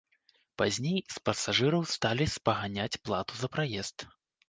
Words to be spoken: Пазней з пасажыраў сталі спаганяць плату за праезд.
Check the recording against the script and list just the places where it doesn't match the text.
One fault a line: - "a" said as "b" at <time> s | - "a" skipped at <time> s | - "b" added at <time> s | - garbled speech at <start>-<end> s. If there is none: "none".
none